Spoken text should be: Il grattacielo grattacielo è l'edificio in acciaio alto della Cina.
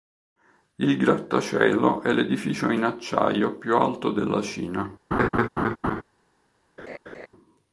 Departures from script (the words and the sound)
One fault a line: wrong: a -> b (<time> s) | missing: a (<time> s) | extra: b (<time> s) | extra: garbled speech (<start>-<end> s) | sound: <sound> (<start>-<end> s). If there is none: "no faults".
missing: grattacielo (2.0 s)
extra: più (3.6 s)
sound: laugh (5.1-6.0 s)
sound: laugh (6.8-7.3 s)